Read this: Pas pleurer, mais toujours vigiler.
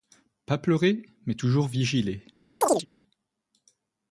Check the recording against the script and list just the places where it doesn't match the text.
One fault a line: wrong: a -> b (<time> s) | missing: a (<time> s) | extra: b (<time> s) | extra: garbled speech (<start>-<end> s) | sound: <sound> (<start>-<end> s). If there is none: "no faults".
sound: chirp (2.6-2.9 s)